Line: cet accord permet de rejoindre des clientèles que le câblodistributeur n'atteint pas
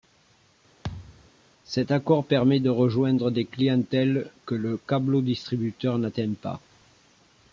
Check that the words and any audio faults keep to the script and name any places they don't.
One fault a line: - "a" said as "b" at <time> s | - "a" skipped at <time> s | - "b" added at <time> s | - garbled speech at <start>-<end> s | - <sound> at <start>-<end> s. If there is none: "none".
- thud at 0.8-1.3 s